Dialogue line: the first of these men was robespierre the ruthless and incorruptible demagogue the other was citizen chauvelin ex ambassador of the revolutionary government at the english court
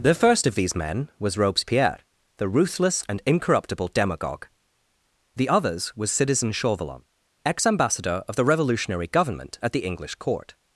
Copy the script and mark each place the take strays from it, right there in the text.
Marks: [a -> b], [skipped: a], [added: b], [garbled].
the first of these men was robespierre the ruthless and incorruptible demagogue the [other -> others] was citizen chauvelin ex ambassador of the revolutionary government at the english court